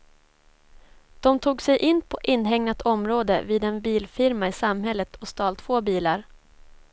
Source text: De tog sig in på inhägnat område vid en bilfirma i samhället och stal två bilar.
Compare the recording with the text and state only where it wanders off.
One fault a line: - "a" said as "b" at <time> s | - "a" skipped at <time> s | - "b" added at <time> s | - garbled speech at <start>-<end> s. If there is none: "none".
none